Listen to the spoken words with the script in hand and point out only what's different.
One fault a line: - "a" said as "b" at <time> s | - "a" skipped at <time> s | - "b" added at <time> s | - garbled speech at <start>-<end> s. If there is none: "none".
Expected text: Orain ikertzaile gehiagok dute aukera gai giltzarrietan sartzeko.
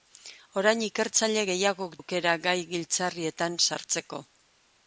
- "dute" skipped at 2.0 s